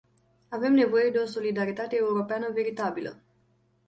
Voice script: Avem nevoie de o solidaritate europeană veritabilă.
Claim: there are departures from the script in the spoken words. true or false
false